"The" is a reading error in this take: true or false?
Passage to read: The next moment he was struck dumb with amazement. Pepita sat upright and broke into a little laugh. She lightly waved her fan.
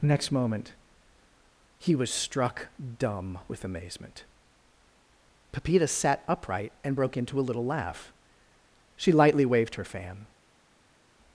true